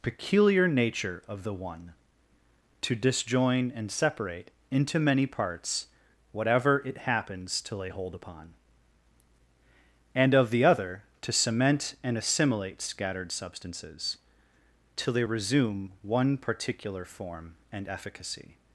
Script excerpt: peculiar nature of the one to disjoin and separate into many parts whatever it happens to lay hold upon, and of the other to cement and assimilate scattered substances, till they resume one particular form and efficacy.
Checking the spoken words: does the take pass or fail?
pass